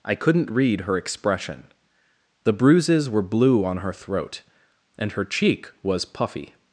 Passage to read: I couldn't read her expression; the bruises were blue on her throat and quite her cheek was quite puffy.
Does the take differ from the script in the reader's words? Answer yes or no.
yes